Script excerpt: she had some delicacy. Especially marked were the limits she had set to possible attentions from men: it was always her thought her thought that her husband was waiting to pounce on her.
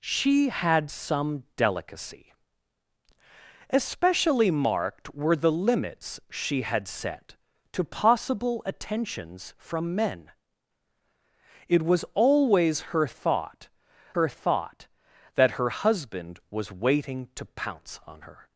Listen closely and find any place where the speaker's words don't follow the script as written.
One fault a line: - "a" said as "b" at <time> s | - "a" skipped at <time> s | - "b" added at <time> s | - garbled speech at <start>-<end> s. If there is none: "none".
none